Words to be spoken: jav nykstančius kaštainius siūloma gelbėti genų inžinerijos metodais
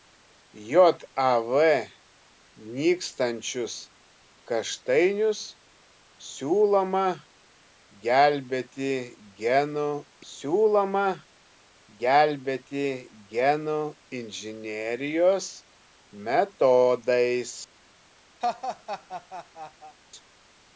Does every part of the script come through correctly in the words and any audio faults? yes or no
no